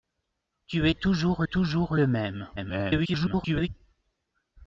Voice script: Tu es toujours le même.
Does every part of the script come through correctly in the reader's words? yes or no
no